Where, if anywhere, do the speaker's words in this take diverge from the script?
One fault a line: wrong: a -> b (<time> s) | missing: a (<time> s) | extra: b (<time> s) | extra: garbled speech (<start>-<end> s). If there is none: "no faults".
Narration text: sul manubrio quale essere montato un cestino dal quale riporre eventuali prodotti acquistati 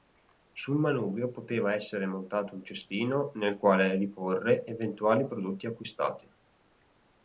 wrong: quale -> poteva (1.3 s)
wrong: dal -> nel (3.4 s)